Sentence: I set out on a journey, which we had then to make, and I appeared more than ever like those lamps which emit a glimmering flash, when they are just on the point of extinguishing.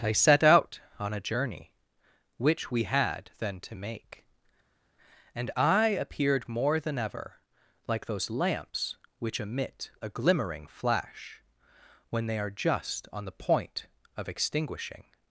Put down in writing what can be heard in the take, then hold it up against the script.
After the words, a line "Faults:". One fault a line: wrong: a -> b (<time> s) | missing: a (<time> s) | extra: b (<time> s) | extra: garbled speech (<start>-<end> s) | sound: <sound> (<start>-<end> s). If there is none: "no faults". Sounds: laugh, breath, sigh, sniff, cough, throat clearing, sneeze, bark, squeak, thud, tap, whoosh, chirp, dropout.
I set out on a journey, which we had then to make, and I appeared more than ever like those lamps which emit a glimmering flash, when they are just on the point of extinguishing.
Faults:
no faults